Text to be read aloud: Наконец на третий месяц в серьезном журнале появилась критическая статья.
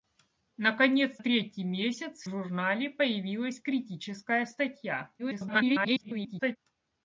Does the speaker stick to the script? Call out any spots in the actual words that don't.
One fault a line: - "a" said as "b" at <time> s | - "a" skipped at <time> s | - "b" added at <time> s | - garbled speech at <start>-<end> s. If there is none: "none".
- "на" skipped at 1.2 s
- "серьезном" skipped at 2.3 s
- garbled speech at 5.2-6.6 s